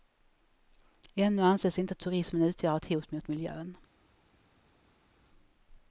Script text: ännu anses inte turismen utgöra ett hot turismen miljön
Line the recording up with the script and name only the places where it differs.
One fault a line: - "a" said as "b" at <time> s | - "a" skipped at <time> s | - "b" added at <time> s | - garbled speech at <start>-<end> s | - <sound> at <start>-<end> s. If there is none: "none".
- "turismen" said as "mot" at 3.1 s